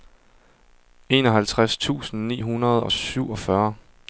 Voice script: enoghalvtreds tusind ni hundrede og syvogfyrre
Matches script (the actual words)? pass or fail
pass